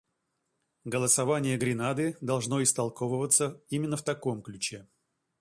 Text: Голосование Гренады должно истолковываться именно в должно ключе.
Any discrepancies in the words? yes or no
yes